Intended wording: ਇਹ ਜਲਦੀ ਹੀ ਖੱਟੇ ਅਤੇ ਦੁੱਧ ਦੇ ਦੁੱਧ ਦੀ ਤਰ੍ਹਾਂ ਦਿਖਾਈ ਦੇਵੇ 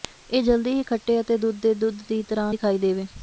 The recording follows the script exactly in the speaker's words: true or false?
true